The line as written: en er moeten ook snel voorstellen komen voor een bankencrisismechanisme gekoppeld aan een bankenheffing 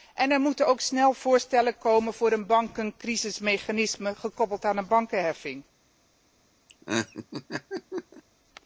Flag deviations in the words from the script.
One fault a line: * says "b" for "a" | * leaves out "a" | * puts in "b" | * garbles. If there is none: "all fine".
all fine